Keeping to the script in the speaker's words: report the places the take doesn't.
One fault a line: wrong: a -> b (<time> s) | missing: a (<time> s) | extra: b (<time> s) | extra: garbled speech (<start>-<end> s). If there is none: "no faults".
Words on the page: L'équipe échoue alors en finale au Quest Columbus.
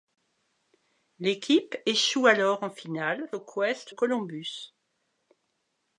no faults